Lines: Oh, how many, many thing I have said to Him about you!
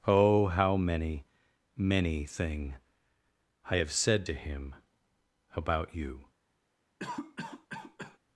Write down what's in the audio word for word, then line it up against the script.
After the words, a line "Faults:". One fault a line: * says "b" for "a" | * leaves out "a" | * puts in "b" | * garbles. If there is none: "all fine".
Oh, how many, many thing I have said to Him about you!
Faults:
all fine